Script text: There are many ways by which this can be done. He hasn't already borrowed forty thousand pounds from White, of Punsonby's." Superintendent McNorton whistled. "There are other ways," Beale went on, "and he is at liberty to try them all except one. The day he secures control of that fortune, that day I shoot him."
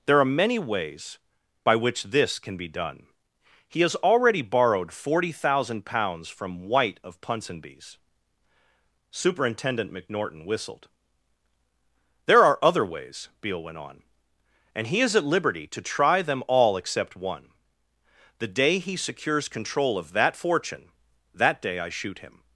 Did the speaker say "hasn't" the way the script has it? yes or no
no